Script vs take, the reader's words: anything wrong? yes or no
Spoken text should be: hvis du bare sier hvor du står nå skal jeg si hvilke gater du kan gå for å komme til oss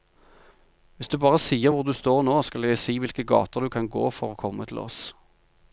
no